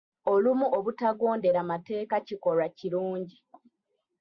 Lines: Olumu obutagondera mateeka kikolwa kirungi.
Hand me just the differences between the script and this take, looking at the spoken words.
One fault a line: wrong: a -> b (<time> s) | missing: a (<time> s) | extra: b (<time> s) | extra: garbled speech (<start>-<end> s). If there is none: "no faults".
no faults